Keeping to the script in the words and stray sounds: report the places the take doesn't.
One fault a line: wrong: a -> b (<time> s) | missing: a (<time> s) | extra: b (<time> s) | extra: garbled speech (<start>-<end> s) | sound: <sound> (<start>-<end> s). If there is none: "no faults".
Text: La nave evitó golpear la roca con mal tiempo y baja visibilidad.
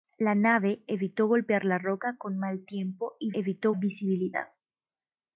wrong: baja -> evitó (3.3 s)